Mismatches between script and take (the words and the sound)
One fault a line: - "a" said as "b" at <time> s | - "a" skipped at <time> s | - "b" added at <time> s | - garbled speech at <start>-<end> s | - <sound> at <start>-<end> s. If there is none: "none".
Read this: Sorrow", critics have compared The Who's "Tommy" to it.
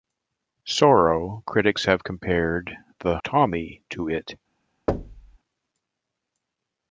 - "Who's" skipped at 3.2 s
- thud at 4.9-5.4 s